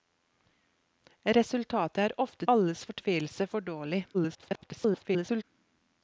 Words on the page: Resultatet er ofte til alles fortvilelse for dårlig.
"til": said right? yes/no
no